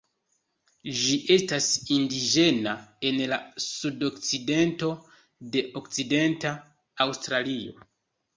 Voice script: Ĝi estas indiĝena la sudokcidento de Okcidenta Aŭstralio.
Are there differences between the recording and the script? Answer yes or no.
yes